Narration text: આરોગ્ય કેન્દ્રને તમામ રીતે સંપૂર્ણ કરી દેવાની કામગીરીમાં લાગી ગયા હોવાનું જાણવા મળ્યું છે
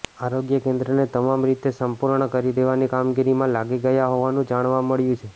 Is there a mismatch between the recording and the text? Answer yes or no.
no